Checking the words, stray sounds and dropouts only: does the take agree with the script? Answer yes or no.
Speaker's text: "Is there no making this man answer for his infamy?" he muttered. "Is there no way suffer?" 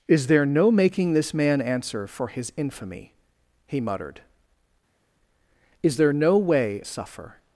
yes